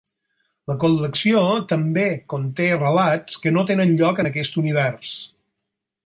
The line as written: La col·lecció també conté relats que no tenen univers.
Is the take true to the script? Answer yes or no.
no